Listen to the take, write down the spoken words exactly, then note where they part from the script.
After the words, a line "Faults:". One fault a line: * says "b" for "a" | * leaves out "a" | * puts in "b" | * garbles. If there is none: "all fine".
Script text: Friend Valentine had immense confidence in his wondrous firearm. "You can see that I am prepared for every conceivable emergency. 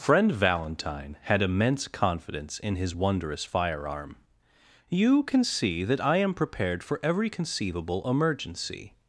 Friend Valentine had immense confidence in his wondrous firearm. "You can see that I am prepared for every conceivable emergency.
Faults:
all fine